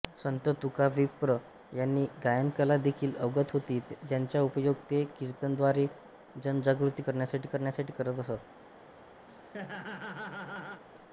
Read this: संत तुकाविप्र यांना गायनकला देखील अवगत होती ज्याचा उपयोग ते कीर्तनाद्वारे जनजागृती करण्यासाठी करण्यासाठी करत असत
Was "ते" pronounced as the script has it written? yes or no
yes